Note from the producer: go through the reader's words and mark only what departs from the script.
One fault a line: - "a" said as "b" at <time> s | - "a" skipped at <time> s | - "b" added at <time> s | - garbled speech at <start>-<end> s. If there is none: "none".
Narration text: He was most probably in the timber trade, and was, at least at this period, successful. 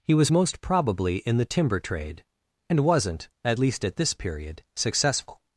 - "was" said as "wasn't" at 2.8 s